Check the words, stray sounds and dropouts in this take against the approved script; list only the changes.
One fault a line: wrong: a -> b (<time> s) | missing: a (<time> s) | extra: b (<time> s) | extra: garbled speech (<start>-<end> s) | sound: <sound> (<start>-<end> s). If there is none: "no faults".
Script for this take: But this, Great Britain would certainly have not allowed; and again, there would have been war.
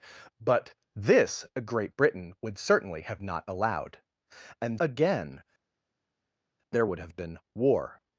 no faults